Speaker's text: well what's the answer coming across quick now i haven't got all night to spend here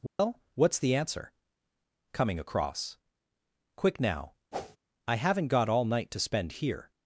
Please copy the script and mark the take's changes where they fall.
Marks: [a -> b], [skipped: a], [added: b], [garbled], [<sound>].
well [dropout] what's the answer coming across quick now [whoosh] i haven't got all night to spend here